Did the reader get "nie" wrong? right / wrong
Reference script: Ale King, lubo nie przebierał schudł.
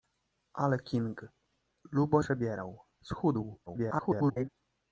wrong